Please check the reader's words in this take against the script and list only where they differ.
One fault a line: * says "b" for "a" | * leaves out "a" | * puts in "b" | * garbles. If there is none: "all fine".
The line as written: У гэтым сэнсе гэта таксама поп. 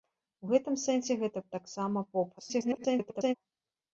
* garbles